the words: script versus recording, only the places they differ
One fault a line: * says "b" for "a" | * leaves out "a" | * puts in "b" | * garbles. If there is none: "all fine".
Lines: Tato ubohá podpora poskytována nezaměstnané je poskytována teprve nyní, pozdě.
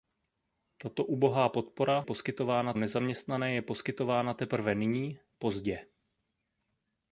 all fine